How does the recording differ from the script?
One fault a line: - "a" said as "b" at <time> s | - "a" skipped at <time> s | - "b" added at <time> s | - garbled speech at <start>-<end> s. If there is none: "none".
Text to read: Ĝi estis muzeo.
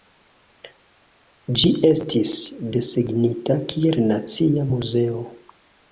- "desegnita kiel nacia" added at 2.8 s